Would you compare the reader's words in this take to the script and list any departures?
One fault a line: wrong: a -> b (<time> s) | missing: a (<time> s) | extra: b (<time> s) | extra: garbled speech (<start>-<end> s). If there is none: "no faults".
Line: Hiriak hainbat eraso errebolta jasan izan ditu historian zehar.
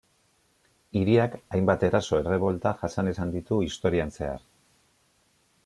no faults